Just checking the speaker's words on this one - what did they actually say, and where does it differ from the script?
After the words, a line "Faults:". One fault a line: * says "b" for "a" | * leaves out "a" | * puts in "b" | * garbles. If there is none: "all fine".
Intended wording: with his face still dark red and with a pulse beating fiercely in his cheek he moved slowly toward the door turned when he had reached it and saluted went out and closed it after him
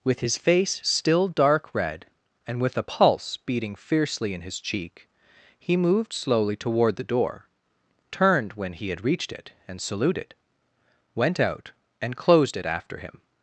with his face still dark red and with a pulse beating fiercely in his cheek he moved slowly toward the door turned when he had reached it and saluted went out and closed it after him
Faults:
all fine